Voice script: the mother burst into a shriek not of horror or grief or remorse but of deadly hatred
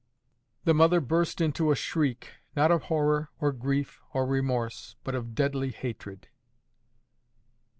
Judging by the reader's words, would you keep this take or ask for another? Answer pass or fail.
pass